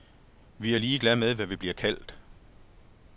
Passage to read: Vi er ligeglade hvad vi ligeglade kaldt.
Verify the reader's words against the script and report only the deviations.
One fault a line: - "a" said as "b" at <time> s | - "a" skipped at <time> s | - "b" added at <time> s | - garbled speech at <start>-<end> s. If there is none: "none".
- "med" added at 1.2 s
- "ligeglade" said as "bliver" at 1.6 s